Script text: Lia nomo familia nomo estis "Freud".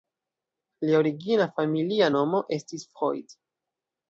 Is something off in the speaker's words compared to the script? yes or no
yes